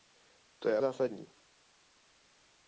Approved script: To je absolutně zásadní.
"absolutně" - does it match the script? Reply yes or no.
no